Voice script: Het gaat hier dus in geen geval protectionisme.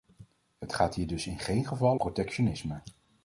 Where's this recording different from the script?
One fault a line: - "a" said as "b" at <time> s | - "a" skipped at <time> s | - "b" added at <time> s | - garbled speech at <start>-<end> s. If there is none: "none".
none